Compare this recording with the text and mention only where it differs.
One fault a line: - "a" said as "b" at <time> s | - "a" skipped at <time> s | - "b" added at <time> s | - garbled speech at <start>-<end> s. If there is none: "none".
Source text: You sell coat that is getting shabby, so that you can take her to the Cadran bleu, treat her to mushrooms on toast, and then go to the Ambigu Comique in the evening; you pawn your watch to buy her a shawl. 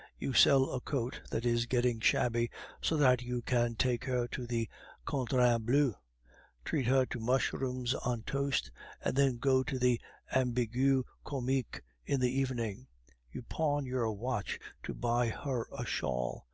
- "a" added at 0.7 s